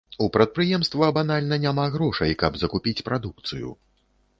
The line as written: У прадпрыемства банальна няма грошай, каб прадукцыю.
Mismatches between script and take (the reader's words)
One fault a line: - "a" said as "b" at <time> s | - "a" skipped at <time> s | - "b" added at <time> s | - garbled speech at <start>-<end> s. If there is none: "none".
- "закупіць" added at 2.6 s